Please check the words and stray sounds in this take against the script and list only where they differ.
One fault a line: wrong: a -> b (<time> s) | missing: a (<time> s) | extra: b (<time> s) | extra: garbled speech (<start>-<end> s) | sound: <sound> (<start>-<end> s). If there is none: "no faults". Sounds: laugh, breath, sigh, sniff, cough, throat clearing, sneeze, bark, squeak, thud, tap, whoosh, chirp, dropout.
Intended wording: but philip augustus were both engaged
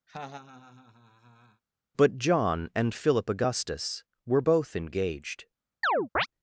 sound: laugh (0.1-1.6 s)
extra: john and (2.2 s)
sound: chirp (5.8-6.3 s)